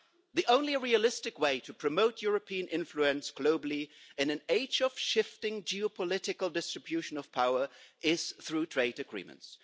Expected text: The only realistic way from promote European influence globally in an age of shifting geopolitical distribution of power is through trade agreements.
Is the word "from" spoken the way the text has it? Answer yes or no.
no